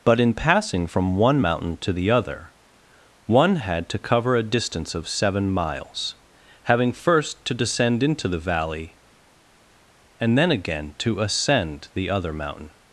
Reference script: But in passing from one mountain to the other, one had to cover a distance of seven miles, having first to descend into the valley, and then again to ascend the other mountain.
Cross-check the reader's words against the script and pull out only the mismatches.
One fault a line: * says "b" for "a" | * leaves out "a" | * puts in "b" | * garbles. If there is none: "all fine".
all fine